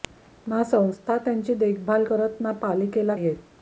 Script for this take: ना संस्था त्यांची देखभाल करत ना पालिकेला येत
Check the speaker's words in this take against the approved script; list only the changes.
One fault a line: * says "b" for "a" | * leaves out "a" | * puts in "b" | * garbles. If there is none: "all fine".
all fine